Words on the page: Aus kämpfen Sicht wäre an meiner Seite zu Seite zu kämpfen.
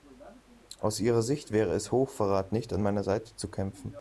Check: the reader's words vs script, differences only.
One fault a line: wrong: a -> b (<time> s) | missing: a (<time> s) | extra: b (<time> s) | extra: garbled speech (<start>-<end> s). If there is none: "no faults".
wrong: kämpfen -> ihrer (1.0 s)
extra: es Hochverrat nicht (1.8 s)
missing: Seite zu (3.5 s)